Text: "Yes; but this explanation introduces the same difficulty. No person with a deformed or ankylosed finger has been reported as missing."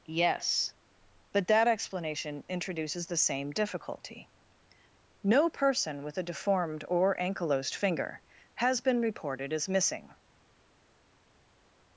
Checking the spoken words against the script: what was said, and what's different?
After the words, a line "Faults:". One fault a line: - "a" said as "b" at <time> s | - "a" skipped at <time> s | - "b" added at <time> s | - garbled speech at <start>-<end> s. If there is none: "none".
"Yes; but that explanation introduces the same difficulty. No person with a deformed or ankylosed finger has been reported as missing."
Faults:
- "this" said as "that" at 1.5 s